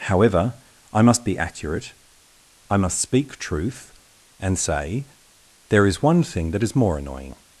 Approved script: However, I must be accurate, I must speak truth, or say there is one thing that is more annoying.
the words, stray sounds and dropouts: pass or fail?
fail